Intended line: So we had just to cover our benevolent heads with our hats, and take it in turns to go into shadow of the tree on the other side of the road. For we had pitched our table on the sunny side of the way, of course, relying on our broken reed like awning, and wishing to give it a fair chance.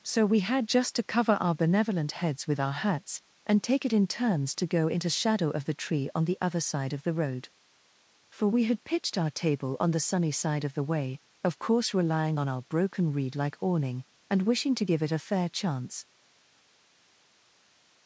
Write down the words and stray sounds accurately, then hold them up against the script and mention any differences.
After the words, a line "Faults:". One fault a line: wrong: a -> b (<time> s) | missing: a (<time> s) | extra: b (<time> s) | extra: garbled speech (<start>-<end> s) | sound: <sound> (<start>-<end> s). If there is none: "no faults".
So we had just to cover our benevolent heads with our hats, and take it in turns to go into shadow of the tree on the other side of the road. For we had pitched our table on the sunny side of the way, of course, relying on our broken reed like awning, and wishing to give it a fair chance.
Faults:
no faults